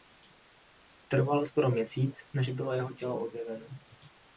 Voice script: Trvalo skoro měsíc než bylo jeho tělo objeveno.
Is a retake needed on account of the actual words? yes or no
no